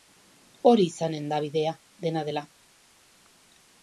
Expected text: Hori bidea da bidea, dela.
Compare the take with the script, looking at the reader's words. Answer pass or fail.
fail